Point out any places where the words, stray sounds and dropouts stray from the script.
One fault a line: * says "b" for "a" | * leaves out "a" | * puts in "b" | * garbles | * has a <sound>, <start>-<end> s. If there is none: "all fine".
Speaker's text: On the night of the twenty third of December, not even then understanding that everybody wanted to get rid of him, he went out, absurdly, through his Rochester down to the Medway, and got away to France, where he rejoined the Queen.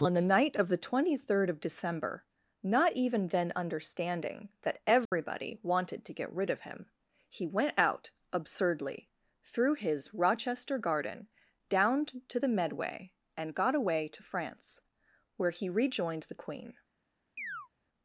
* has a dropout, 5.1-5.1 s
* puts in "garden"
* has a chirp, 17.4-17.7 s